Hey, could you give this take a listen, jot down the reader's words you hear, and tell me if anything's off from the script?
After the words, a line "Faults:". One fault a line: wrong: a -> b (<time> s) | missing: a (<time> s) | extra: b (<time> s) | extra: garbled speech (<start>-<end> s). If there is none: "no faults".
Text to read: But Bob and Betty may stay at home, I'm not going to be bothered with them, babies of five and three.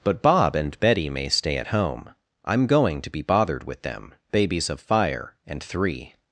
But Bob and Betty may stay at home, I'm going to be bothered with them, babies of fire and three.
Faults:
missing: not (2.6 s)
wrong: five -> fire (4.8 s)